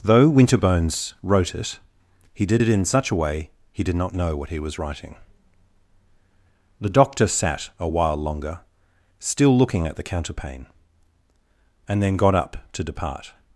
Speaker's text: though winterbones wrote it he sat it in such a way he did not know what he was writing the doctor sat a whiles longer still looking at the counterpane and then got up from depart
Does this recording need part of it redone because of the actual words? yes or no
yes